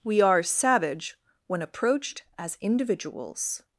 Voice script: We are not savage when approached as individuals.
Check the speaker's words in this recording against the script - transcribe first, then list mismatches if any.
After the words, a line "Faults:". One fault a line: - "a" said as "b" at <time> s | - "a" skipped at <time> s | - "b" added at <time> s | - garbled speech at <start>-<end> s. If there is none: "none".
We are savage when approached as individuals.
Faults:
- "not" skipped at 0.4 s